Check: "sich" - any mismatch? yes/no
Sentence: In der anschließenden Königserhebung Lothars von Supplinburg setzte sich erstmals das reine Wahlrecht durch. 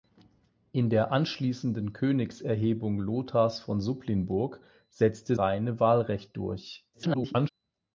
yes